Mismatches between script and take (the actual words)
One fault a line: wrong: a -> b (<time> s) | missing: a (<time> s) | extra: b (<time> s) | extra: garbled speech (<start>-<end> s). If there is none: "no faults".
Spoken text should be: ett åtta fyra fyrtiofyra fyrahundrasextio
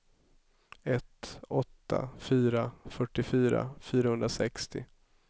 no faults